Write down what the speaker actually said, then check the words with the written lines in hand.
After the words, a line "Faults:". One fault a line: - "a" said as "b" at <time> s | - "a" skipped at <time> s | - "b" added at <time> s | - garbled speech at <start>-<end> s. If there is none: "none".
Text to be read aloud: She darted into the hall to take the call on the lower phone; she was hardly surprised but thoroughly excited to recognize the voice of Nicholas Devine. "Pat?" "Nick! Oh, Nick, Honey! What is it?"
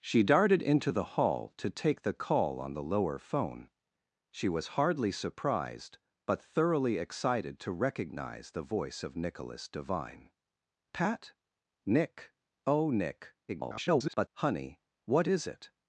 She darted into the hall to take the call on the lower phone; she was hardly surprised but thoroughly excited to recognize the voice of Nicholas Devine. "Pat?" "Nick! Oh, Nick, [garbled] Honey! What is it?"
Faults:
- garbled speech at 13.5-14.3 s